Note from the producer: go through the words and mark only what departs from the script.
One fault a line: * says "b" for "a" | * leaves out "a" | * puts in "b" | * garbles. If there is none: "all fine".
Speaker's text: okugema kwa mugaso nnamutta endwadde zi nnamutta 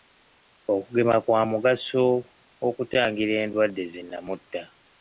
* says "okutangira" for "nnamutta"